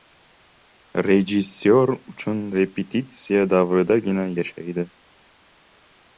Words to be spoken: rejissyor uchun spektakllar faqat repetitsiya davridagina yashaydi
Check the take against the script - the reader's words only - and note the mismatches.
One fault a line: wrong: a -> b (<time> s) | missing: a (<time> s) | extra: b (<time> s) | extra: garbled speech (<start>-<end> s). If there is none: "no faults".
missing: spektakllar faqat (2.4 s)